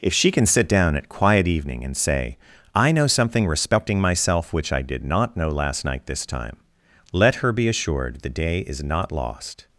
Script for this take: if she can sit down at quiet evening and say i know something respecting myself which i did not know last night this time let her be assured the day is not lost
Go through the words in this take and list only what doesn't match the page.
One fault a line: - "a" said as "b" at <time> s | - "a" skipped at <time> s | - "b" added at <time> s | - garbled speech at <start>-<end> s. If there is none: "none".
none